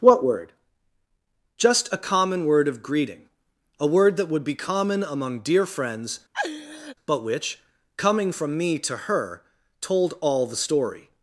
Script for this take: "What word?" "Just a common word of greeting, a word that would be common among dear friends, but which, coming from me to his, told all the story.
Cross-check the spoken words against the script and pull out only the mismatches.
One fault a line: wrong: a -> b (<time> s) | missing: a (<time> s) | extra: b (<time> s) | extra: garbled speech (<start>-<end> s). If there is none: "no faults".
wrong: his -> her (8.9 s)